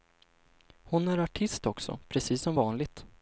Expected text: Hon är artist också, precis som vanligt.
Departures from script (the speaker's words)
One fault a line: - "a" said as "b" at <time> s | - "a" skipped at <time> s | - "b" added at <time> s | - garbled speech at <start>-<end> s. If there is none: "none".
none